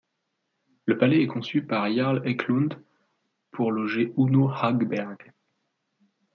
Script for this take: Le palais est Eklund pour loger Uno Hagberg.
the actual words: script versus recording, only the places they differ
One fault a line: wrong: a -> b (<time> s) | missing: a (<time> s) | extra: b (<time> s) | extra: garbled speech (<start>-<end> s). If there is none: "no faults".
extra: conçu par Jarl (1.3 s)